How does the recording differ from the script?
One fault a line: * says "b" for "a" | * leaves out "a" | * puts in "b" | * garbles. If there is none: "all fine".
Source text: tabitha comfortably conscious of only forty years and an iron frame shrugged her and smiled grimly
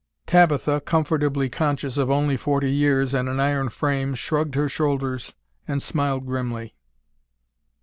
* puts in "shoulders"